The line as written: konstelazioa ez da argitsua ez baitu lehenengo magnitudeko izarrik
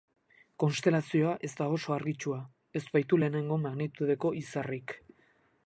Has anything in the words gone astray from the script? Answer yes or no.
yes